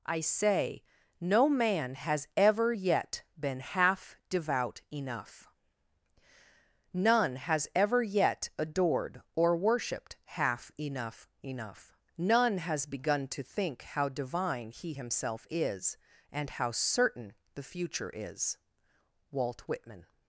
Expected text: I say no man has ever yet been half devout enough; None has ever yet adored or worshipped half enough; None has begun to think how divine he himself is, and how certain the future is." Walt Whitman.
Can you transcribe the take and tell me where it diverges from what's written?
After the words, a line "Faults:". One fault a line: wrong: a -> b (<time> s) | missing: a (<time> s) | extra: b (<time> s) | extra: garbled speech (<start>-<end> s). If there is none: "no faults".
I say no man has ever yet been half devout enough; None has ever yet adored or worshipped half enough; enough None has begun to think how divine he himself is, and how certain the future is." Walt Whitman.
Faults:
extra: enough (11.4 s)